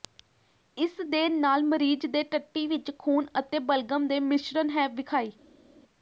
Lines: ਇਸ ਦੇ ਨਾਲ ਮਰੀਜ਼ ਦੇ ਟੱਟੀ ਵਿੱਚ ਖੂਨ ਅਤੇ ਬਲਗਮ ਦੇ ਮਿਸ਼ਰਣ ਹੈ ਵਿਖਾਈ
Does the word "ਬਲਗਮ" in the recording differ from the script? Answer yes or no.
no